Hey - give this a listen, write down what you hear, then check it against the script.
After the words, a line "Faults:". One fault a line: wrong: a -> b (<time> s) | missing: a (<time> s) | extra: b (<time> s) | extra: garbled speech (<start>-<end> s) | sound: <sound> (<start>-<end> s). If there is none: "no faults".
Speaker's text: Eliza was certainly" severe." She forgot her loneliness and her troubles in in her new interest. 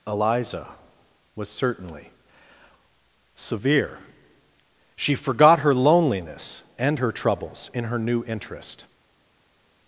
Eliza was certainly" severe." She forgot her loneliness and her troubles in her new interest.
Faults:
missing: in (7.8 s)